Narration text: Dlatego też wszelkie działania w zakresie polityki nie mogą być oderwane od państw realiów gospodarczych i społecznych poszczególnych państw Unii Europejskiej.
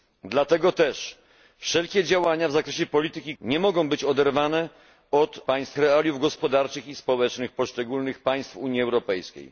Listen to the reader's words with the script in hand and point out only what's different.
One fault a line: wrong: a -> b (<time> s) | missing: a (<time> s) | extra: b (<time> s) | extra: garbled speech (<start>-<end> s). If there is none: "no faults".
no faults